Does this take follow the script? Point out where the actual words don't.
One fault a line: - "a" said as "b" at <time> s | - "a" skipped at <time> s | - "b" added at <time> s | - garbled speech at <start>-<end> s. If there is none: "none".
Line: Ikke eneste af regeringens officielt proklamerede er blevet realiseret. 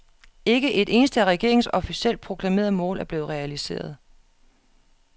- "et" added at 0.7 s
- "mål" added at 2.7 s